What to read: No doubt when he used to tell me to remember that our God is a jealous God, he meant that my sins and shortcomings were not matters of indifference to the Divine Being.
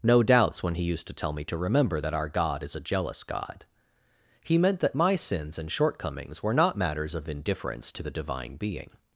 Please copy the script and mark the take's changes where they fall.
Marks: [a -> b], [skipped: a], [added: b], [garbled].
No [doubt -> doubts] when he used to tell me to remember that our God is a jealous God, he meant that my sins and shortcomings were not matters of indifference to the Divine Being.